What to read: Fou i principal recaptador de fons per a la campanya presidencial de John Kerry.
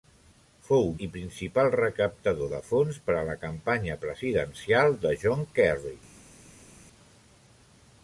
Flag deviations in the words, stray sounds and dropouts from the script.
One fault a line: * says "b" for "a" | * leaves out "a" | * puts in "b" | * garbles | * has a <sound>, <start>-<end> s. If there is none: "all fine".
all fine